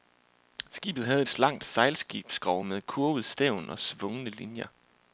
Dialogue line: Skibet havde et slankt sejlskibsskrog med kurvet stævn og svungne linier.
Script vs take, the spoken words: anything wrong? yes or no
no